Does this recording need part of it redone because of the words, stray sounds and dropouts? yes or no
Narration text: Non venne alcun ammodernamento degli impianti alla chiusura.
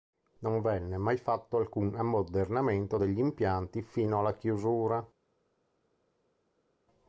yes